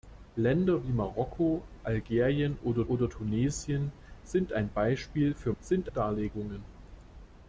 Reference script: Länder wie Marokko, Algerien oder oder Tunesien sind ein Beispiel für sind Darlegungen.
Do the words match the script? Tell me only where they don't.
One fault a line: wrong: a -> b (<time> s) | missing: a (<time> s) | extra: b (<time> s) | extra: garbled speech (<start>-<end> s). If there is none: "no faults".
no faults